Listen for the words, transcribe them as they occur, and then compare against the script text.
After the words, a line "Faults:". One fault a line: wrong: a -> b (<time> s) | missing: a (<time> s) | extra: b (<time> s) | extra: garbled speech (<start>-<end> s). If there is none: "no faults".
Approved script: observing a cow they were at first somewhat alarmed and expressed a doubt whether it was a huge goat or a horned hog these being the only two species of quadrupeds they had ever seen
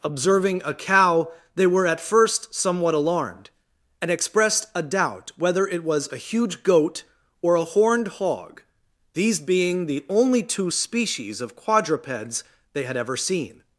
observing a cow they were at first somewhat alarmed and expressed a doubt whether it was a huge goat or a horned hog these being the only two species of quadrupeds they had ever seen
Faults:
no faults